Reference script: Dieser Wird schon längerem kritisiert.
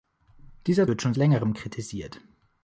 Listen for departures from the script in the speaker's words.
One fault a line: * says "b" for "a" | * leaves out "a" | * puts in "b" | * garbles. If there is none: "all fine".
all fine